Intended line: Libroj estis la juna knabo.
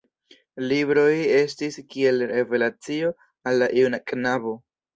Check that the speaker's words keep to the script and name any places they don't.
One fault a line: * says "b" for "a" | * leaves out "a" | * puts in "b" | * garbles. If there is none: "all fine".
* puts in "kiel revelacio al"